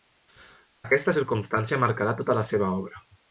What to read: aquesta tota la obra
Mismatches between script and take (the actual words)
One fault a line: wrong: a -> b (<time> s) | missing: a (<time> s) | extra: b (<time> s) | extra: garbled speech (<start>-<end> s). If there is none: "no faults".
extra: circumstància marcarà (1.2 s)
extra: seva (2.6 s)